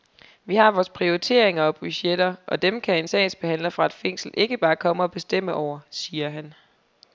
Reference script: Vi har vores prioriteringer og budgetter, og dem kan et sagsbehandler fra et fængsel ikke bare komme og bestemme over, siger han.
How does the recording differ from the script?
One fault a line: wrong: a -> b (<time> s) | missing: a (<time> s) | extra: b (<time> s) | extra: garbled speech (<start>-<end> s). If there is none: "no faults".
wrong: et -> en (3.0 s)